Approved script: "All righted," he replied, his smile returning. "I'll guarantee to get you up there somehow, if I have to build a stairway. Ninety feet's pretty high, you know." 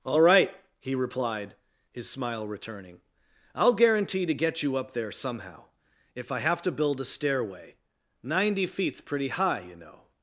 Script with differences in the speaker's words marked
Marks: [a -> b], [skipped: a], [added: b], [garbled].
"All [righted," -> right] he replied, his smile returning. "I'll guarantee to get you up there somehow, if I have to build a stairway. Ninety feet's pretty high, you know."